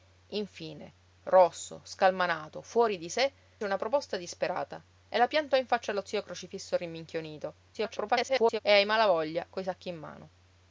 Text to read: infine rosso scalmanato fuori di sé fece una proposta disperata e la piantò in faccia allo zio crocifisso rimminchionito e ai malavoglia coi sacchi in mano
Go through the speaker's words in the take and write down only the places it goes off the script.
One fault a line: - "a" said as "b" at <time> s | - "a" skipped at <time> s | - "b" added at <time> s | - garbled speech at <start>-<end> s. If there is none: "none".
- "fece" skipped at 3.3 s
- garbled speech at 7.7-8.6 s